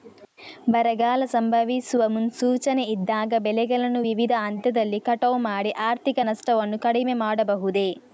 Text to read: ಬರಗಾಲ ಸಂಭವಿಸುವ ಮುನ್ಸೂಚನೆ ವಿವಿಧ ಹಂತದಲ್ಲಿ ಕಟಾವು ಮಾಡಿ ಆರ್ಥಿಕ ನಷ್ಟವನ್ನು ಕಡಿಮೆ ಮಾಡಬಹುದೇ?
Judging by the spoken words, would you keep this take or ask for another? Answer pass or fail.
fail